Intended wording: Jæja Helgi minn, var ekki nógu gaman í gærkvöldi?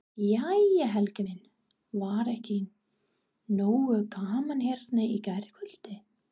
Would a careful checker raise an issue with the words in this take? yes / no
yes